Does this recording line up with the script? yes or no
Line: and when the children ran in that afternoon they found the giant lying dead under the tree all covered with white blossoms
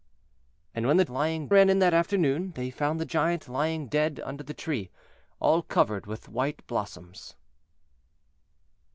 no